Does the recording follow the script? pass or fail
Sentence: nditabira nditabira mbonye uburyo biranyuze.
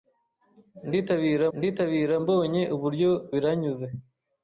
pass